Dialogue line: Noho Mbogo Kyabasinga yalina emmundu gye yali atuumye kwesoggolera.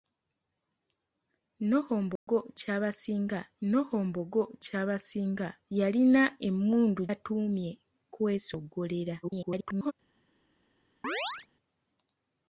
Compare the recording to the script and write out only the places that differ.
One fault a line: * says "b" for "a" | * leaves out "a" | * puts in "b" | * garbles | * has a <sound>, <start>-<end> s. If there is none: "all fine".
* has a dropout, 2.2-2.3 s
* puts in "noho Mbogo Kyabasinga"
* leaves out "gye yali"
* garbles
* has a chirp, 11.0-11.5 s